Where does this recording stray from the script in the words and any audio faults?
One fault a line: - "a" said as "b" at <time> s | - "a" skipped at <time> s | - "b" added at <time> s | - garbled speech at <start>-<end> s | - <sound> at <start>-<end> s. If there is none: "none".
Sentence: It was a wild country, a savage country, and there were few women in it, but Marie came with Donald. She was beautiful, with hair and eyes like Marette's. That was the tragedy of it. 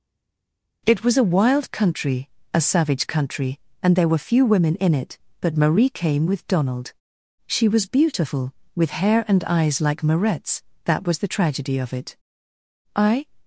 - "I" added at 13.0 s